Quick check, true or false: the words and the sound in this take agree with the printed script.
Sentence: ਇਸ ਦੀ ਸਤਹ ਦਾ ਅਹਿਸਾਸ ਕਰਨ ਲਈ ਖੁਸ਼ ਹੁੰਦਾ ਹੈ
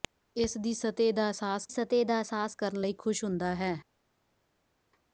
false